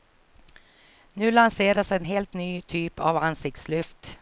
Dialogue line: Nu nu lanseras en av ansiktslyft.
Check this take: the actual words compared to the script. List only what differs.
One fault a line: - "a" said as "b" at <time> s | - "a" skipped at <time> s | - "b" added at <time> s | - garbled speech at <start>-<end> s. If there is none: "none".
- "nu" skipped at 1.3 s
- "helt ny typ" added at 2.0 s